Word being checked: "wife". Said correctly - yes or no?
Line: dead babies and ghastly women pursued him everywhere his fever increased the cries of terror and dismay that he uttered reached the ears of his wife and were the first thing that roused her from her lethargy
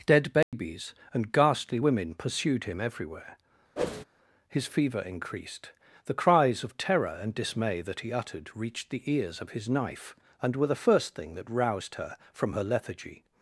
no